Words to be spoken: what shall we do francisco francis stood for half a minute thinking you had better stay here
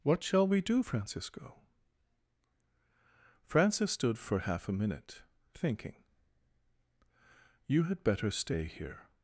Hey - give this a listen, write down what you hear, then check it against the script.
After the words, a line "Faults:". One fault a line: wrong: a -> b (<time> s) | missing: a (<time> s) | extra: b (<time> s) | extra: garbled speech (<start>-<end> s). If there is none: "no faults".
what shall we do francisco francis stood for half a minute thinking you had better stay here
Faults:
no faults